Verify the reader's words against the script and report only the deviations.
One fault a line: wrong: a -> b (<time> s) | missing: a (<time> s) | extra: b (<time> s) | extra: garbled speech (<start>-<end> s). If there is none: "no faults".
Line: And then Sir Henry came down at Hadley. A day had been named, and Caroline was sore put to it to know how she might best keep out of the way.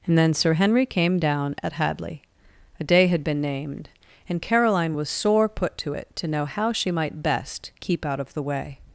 no faults